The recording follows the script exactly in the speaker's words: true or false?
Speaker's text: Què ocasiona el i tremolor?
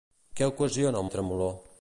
true